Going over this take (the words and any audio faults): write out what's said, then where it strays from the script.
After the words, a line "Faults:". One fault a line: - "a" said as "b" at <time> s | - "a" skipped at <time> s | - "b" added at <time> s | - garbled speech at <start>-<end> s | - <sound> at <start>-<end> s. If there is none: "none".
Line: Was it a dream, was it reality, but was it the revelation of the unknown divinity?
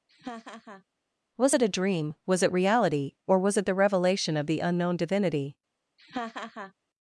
Was it a dream, was it reality, or was it the revelation of the unknown divinity?
Faults:
- laugh at 0.1-0.8 s
- "but" said as "or" at 3.3 s
- laugh at 6.0-6.7 s